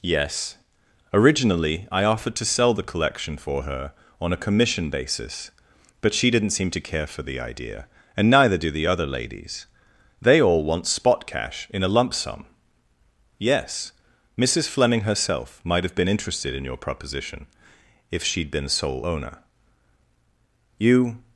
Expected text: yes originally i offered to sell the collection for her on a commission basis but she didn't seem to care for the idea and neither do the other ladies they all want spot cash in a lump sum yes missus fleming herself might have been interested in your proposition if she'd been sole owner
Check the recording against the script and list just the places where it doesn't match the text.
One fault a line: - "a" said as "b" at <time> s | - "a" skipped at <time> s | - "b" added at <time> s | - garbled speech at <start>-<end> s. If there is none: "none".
- "you" added at 20.8 s